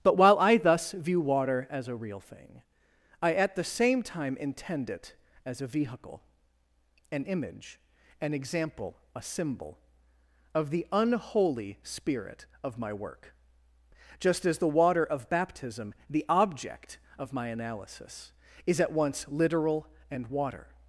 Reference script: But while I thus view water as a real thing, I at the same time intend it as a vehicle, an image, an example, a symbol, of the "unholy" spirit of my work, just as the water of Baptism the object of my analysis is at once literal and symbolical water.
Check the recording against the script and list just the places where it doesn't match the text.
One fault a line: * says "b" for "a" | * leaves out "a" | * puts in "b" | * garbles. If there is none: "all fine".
* leaves out "symbolical"